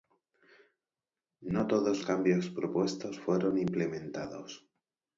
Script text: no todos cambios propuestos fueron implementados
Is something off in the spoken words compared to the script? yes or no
no